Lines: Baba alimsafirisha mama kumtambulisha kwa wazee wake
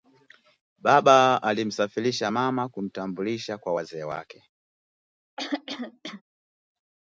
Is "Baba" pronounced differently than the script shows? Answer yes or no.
no